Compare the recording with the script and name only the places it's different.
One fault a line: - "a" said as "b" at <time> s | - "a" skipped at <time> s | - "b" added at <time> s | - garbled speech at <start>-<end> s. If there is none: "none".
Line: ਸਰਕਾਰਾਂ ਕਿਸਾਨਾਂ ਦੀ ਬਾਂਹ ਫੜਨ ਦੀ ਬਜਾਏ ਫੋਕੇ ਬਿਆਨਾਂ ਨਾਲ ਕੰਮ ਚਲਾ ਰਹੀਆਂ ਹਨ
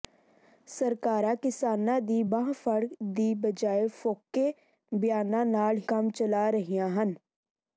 none